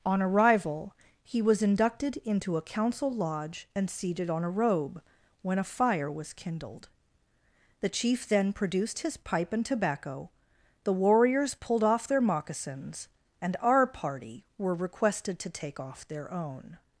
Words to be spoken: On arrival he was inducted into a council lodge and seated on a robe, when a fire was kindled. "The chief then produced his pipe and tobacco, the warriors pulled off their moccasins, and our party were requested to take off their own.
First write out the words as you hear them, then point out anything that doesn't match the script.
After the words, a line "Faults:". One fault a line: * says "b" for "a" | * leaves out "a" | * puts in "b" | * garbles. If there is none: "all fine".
On arrival he was inducted into a council lodge and seated on a robe, when a fire was kindled. "The chief then produced his pipe and tobacco, the warriors pulled off their moccasins, and our party were requested to take off their own.
Faults:
all fine